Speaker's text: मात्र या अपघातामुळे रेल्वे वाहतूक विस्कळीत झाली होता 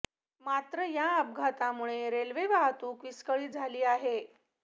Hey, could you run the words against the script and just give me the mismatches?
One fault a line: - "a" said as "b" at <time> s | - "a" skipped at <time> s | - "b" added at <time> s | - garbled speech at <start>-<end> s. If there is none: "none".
- "होता" said as "आहे" at 3.8 s